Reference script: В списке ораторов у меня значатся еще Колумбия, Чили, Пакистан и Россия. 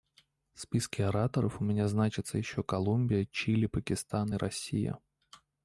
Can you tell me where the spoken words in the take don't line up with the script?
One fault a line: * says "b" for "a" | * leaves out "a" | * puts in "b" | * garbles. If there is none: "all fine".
all fine